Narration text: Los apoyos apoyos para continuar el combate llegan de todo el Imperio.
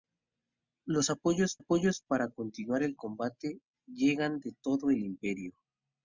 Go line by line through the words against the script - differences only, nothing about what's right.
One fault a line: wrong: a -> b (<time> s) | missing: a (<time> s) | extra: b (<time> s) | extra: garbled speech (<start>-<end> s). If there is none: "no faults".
no faults